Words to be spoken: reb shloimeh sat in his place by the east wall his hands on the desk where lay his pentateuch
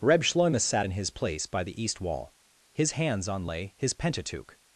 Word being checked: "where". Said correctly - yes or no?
no